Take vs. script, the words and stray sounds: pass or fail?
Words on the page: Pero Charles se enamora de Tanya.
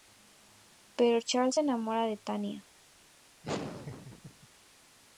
fail